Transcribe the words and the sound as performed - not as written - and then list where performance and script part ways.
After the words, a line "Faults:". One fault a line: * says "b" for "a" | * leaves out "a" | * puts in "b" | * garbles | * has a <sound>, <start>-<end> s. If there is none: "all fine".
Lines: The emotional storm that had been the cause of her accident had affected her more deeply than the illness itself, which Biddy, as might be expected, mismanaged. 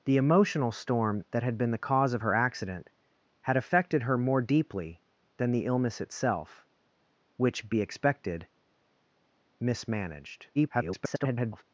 The emotional storm that had been the cause of her accident had affected her more deeply than the illness itself, which Be expected, mismanaged. [garbled]
Faults:
* leaves out "Biddy as might"
* garbles